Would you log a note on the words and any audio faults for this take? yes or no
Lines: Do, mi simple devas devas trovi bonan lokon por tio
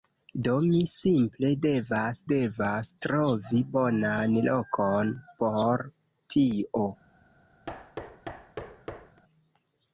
yes